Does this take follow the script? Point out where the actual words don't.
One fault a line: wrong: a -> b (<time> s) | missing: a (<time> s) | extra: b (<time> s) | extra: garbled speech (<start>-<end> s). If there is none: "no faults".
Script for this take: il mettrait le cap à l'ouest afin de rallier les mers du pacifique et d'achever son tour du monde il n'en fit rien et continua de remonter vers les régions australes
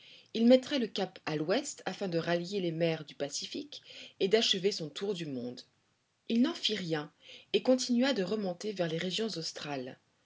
no faults